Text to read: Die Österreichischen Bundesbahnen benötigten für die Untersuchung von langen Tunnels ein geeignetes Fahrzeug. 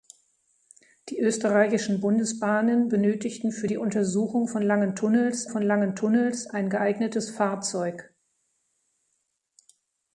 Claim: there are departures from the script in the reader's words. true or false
true